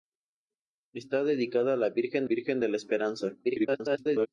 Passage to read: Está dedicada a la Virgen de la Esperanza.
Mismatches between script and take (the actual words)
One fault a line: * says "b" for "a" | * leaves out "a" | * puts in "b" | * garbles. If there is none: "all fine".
* puts in "Virgen"
* garbles